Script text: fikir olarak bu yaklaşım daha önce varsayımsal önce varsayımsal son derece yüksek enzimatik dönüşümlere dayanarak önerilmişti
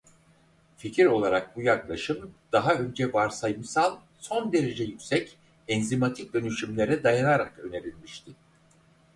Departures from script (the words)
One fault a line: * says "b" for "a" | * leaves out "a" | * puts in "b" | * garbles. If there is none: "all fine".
* leaves out "önce varsayımsal"